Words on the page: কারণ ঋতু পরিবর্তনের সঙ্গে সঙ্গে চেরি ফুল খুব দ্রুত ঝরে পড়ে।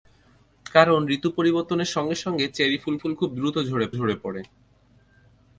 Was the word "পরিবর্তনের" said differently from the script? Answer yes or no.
no